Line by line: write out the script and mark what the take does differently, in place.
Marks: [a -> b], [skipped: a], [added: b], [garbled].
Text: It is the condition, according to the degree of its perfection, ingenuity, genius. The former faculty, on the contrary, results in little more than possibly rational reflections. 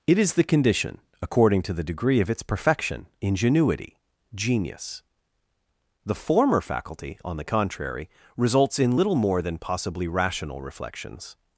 It is the condition, according to the degree of its perfection, ingenuity, genius. The former faculty, on the contrary, results in little more than possibly rational reflections.